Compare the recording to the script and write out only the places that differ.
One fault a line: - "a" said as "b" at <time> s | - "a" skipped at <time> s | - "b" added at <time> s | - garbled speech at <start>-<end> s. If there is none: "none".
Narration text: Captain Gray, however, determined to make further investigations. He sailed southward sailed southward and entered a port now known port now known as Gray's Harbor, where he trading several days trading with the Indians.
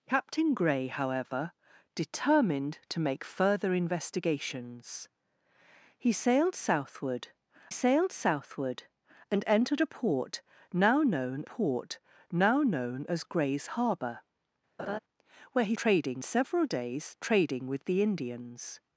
none